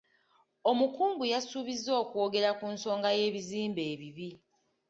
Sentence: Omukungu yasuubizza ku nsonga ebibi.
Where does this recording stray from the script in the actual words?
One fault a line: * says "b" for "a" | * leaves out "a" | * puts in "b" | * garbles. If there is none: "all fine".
* puts in "okwogera"
* puts in "y'ebizimbe"